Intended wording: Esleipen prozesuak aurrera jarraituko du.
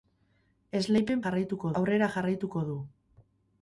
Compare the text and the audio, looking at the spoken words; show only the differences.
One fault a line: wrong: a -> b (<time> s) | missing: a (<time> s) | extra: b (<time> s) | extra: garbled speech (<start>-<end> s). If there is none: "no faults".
wrong: prozesuak -> jarraituko (1.2 s)